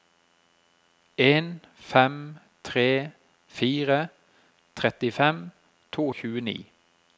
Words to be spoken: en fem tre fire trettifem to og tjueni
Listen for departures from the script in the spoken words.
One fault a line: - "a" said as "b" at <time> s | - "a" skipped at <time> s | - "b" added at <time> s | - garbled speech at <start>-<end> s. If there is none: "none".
none